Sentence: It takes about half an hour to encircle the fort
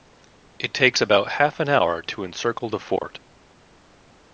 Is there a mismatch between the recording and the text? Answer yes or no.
no